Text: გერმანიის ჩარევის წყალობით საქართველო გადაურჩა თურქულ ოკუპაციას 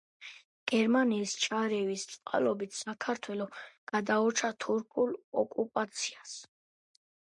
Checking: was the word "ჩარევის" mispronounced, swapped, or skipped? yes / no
no